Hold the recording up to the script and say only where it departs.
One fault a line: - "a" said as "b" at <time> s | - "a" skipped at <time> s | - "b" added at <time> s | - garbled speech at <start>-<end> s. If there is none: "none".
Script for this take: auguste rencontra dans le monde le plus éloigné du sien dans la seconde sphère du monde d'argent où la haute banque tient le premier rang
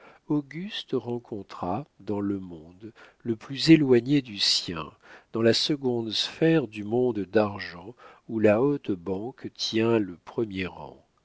none